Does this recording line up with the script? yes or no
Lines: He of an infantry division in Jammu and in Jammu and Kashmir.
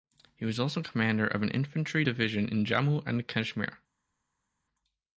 no